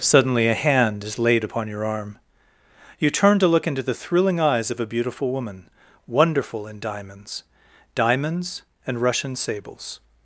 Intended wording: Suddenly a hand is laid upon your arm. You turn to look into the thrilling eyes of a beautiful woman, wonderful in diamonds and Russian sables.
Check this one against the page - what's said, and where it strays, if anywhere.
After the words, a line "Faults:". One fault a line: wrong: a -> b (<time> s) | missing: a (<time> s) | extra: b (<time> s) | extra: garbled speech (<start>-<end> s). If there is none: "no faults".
Suddenly a hand is laid upon your arm. You turn to look into the thrilling eyes of a beautiful woman, wonderful in diamonds diamonds and Russian sables.
Faults:
extra: diamonds (7.9 s)